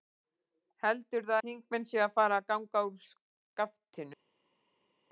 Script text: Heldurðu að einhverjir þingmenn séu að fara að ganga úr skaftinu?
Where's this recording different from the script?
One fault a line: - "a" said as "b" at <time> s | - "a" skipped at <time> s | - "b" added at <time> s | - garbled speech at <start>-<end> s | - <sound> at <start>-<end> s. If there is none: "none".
- "að einhverjir" skipped at 1.4 s